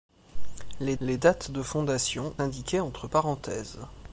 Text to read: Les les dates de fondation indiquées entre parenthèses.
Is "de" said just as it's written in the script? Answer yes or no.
yes